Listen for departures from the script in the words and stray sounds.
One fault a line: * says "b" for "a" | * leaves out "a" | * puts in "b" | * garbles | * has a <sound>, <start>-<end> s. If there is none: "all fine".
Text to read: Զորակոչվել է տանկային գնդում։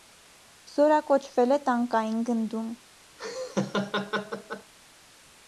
* has a laugh, 3.2-4.7 s